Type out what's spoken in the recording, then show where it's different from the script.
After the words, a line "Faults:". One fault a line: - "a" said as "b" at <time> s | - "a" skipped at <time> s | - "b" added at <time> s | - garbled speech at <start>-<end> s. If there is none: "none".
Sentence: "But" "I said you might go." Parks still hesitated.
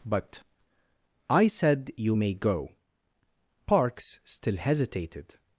"But" "I said you may go." Parks still hesitated.
Faults:
- "might" said as "may" at 2.1 s